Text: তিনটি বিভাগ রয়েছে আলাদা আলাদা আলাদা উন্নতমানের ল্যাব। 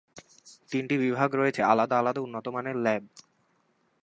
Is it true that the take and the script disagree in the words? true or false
true